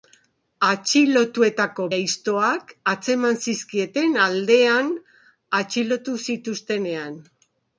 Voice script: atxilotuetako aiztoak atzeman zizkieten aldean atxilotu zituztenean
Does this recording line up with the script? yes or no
yes